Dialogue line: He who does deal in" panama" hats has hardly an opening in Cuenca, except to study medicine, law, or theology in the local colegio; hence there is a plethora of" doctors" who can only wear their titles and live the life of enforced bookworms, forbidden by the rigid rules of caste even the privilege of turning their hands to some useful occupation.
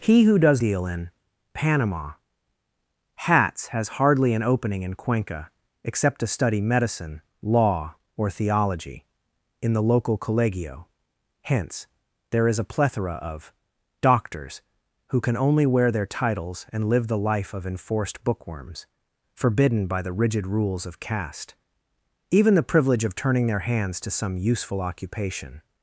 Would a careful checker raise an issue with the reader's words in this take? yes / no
no